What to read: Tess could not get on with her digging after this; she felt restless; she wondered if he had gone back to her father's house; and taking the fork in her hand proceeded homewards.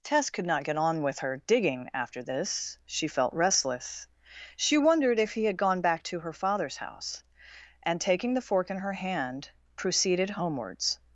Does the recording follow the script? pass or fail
pass